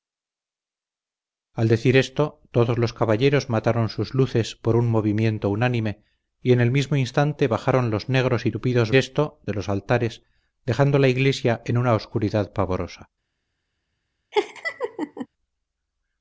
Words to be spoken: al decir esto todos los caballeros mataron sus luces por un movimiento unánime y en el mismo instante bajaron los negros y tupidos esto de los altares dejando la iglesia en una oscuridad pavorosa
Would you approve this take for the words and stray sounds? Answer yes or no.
no